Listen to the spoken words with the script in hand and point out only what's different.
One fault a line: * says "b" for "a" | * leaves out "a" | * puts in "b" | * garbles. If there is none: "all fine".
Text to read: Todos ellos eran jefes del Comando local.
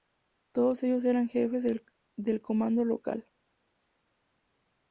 all fine